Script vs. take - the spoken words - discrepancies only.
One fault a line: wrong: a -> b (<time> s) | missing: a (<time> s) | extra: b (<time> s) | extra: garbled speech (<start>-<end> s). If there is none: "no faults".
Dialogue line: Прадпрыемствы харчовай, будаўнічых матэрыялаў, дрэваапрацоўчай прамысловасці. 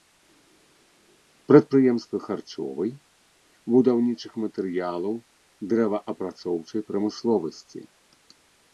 no faults